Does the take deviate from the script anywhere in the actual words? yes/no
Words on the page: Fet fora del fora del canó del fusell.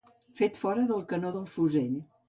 yes